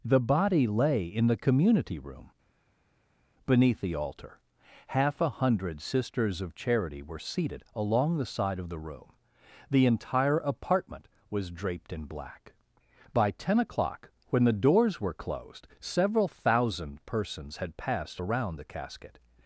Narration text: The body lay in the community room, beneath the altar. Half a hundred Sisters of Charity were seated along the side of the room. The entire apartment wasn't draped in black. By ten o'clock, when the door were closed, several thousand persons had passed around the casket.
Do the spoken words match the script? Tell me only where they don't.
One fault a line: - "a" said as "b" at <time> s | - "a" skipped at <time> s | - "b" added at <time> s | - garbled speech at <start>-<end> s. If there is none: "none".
- "wasn't" said as "was" at 11.3 s
- "door" said as "doors" at 14.5 s